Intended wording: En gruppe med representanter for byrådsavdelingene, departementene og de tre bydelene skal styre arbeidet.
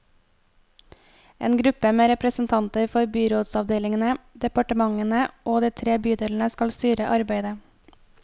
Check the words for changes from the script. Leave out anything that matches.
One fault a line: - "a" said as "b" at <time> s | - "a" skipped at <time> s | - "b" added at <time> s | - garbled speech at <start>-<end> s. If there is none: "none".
none